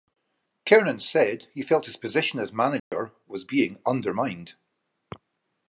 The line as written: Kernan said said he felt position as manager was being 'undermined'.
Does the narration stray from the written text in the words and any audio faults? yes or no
yes